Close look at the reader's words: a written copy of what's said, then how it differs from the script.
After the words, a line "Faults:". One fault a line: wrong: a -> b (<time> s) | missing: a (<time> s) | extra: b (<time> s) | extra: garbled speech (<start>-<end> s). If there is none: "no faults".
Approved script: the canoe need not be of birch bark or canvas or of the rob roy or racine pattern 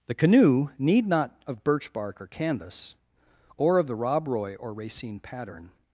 the canoe need not of birch bark or canvas or of the rob roy or racine pattern
Faults:
missing: be (1.4 s)